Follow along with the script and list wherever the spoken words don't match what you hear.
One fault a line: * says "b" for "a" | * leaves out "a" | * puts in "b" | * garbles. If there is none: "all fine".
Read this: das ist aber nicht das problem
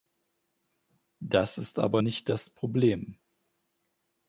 all fine